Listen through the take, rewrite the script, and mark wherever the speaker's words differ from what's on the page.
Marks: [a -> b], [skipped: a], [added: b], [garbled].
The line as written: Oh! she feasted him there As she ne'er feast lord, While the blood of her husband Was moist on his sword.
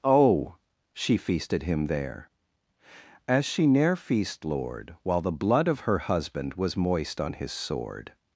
Oh! she feasted him there As she ne'er feast lord, While the blood of her husband Was moist on his sword.